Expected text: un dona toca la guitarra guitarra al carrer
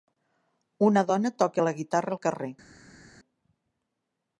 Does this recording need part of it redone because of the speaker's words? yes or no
yes